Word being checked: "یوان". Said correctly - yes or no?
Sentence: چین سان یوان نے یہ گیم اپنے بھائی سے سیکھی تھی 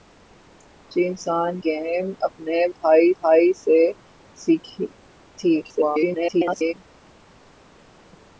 no